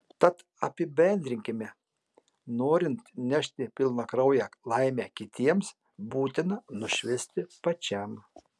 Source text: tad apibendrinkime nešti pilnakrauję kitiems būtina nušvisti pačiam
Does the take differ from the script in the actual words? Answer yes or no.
yes